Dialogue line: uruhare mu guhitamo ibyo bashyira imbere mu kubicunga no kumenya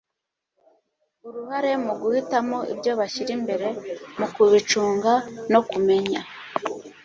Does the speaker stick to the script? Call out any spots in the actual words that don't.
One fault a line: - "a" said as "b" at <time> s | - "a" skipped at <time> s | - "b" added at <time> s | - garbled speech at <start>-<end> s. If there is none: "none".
none